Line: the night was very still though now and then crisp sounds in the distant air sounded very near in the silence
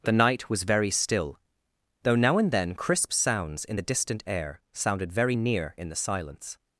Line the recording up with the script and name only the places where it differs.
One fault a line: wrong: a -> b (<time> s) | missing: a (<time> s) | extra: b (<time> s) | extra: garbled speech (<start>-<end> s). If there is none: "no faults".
no faults